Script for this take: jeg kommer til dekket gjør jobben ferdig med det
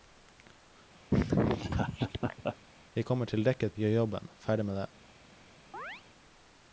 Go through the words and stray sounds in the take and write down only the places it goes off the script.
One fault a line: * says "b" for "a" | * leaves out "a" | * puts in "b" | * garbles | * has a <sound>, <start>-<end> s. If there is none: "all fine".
* has a laugh, 1.1-2.6 s
* has a chirp, 5.7-6.0 s